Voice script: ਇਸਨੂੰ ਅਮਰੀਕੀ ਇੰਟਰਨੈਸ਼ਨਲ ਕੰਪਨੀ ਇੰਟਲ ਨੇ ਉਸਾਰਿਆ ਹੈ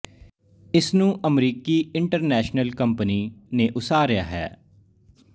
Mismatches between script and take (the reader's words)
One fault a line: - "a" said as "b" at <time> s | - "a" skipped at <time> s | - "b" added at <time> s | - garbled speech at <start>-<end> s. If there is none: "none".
- "ਇੰਟਲ" skipped at 3.2 s